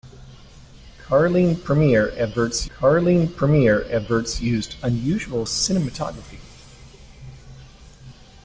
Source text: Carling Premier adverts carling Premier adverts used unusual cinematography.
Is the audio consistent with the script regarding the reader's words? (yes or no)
yes